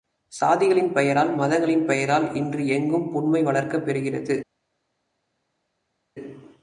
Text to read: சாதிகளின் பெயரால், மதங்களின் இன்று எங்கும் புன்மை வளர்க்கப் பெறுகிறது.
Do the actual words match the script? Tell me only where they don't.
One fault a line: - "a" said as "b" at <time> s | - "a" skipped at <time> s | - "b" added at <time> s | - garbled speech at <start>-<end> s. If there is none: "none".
- "பெயரால்" added at 1.9 s